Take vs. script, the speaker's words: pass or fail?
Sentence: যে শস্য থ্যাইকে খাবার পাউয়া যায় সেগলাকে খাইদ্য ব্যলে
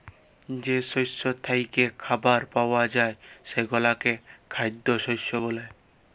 fail